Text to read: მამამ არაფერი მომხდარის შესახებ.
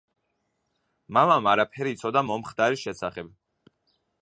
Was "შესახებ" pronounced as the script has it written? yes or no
yes